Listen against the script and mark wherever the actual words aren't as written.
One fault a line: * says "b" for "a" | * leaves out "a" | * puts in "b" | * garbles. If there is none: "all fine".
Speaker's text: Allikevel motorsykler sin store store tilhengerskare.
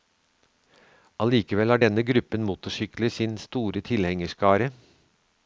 * puts in "har denne gruppen"
* leaves out "store"